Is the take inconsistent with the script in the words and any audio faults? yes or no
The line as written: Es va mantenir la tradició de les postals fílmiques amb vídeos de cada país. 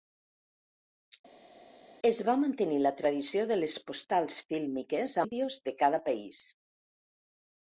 yes